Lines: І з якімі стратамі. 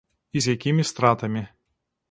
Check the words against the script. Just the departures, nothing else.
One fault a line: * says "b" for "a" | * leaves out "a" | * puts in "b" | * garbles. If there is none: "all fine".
all fine